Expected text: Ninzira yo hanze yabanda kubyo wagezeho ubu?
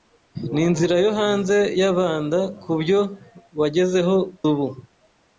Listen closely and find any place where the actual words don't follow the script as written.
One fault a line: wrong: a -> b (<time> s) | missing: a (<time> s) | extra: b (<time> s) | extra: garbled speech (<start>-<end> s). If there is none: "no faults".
no faults